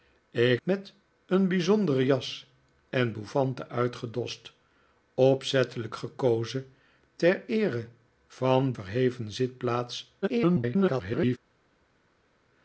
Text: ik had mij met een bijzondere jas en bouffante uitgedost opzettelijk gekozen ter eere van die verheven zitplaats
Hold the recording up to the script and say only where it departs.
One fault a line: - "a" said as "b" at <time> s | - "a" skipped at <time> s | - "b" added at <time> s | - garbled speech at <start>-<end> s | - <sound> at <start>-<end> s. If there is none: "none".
- "had mij" skipped at 0.6 s
- "die" skipped at 8.7 s
- garbled speech at 10.2-11.4 s